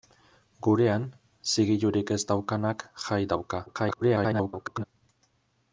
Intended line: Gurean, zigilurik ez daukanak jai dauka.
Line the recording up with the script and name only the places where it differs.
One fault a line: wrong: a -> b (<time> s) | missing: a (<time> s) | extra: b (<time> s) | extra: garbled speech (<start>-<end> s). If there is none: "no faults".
extra: garbled speech (3.7-4.8 s)